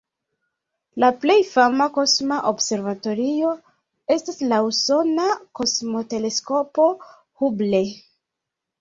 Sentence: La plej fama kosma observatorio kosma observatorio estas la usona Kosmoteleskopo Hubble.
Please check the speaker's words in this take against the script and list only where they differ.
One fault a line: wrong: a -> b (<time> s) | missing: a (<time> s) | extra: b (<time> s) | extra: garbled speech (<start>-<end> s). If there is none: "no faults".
missing: kosma observatorio (3.5 s)